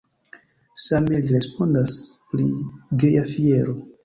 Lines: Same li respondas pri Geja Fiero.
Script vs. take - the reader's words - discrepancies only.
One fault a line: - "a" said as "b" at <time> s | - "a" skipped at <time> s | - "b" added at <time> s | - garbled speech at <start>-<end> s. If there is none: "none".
none